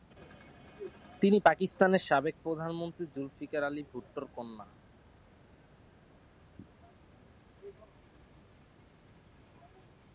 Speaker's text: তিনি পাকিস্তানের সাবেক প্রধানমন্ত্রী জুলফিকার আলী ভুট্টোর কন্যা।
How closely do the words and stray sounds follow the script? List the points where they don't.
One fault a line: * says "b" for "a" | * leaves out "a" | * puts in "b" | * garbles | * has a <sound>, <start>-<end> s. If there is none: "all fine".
all fine